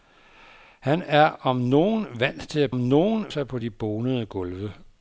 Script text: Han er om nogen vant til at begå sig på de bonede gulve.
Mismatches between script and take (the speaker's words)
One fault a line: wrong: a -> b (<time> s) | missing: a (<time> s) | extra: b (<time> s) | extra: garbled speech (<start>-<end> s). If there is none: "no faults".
wrong: begå -> nogen (2.7 s)